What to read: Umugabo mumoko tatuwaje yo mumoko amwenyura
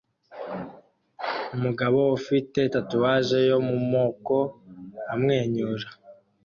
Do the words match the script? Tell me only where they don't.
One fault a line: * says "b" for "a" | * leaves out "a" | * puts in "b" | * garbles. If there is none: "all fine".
* says "ufite" for "mumoko"